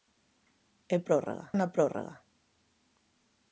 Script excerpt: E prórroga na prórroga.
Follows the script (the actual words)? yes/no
yes